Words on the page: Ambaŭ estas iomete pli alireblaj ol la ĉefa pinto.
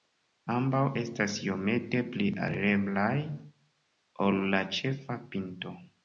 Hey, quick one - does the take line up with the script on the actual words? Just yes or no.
yes